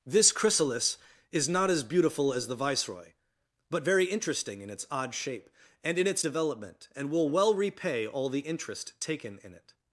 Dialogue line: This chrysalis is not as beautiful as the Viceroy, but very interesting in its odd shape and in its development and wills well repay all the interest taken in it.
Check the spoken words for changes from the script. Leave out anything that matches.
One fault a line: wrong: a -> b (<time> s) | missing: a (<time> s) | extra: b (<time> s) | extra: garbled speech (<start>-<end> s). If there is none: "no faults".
wrong: wills -> will (7.1 s)